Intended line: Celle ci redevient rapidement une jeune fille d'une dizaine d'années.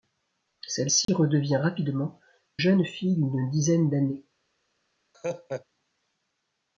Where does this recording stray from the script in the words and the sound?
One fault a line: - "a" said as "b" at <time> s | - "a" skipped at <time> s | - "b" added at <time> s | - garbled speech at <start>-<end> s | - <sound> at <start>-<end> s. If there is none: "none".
- dropout at 1.0-1.1 s
- "une" skipped at 2.2 s
- laugh at 5.1-5.7 s